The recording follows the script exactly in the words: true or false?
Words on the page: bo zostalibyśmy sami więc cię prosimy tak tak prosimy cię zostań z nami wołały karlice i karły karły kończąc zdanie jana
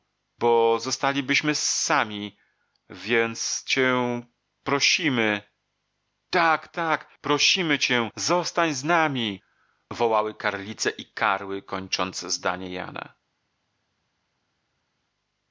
false